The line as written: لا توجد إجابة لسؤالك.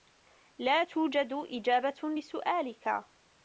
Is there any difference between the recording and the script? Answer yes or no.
no